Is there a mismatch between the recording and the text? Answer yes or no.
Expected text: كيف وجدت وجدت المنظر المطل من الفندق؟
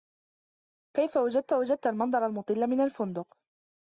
no